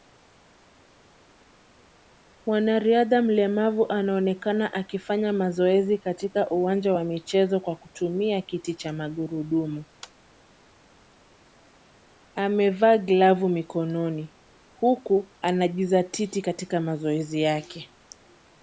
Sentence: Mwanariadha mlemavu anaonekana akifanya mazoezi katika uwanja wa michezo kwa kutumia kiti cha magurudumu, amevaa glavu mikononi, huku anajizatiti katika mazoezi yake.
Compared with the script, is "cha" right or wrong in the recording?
right